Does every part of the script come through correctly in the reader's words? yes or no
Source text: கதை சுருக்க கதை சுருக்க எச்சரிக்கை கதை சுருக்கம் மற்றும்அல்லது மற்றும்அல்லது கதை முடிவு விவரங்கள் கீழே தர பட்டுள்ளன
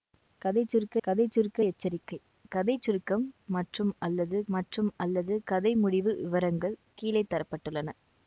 yes